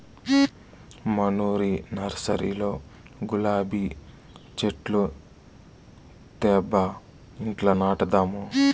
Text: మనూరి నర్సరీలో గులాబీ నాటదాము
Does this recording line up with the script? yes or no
no